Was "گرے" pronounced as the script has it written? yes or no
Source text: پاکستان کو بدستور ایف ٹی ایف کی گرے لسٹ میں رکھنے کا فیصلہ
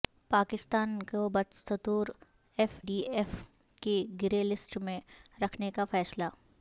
yes